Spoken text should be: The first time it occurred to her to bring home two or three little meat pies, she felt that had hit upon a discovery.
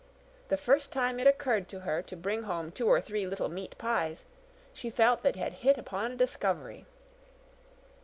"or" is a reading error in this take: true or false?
false